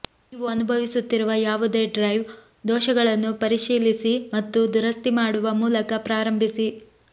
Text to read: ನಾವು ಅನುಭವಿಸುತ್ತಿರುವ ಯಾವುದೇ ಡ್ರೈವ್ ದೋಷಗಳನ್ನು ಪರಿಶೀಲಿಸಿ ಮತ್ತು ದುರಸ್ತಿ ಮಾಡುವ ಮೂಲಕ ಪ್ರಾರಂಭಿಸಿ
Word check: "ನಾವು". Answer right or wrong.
wrong